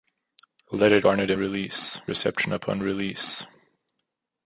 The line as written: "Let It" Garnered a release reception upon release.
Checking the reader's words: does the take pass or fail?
pass